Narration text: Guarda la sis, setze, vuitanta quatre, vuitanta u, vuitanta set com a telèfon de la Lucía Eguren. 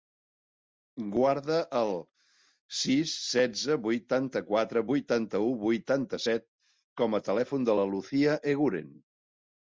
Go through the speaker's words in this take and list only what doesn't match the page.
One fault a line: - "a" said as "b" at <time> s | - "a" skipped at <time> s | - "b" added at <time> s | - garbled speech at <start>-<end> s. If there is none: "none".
- "la" said as "el" at 1.8 s